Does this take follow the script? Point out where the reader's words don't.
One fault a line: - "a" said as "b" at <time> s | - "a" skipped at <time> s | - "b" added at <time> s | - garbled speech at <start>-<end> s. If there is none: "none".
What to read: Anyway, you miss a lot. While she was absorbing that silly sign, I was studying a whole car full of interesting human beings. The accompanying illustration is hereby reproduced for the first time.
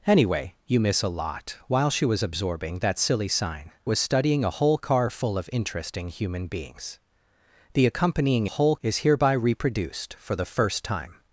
- "I" skipped at 3.7 s
- "illustration" said as "whole" at 8.5 s